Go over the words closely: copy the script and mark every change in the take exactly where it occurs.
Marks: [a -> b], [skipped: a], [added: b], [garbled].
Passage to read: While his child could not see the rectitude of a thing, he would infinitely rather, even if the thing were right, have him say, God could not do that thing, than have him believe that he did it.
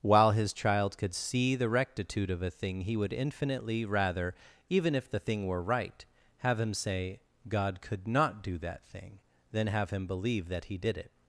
While his child could [skipped: not] see the rectitude of a thing, he would infinitely rather, even if the thing were right, have him say, God could not do that thing, than have him believe that he did it.